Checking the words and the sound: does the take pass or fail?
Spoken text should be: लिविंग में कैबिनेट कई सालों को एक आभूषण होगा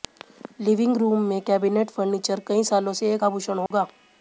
fail